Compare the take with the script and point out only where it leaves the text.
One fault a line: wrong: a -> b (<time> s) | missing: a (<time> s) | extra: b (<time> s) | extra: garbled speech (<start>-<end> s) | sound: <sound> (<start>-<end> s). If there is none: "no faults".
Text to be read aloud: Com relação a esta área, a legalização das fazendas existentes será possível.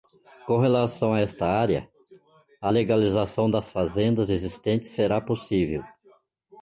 no faults